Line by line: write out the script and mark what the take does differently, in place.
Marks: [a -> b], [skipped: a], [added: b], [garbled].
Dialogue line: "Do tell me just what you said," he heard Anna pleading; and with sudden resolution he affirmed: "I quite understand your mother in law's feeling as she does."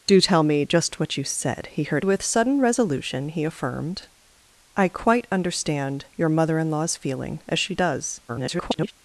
"Do tell me just what you said," he heard [skipped: Anna pleading; and] with sudden resolution he affirmed: "I quite understand your mother in law's feeling as she does." [garbled]